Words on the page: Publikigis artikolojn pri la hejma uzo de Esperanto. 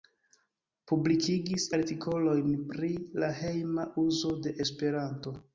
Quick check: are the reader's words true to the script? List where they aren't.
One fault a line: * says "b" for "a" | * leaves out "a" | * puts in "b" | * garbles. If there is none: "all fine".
all fine